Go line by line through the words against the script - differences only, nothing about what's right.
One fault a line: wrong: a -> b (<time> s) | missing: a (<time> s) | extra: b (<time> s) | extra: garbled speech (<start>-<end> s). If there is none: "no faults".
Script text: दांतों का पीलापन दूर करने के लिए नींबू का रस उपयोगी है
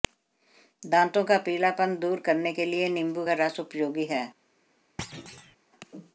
no faults